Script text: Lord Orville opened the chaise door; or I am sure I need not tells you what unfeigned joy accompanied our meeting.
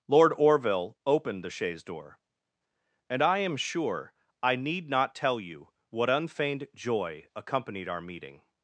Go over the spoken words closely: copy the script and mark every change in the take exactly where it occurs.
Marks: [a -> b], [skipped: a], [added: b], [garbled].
Lord Orville opened the chaise door; [or -> and] I am sure I need not [tells -> tell] you what unfeigned joy accompanied our meeting.